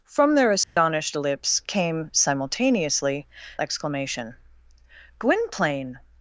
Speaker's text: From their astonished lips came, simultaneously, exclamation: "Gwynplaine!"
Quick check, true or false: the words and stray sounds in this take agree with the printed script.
false